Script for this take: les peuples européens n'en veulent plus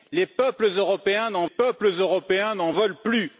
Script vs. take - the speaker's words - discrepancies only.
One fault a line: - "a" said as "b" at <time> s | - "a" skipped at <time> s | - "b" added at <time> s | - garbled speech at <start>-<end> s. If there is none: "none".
- "peuples européens n'en" added at 1.4 s